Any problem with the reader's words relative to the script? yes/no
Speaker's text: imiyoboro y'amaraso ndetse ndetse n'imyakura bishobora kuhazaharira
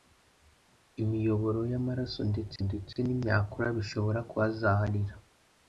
no